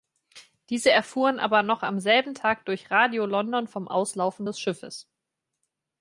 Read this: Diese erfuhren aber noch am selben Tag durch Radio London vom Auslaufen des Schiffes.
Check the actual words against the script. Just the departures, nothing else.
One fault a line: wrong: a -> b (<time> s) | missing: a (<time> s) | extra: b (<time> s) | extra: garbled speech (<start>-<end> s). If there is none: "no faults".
no faults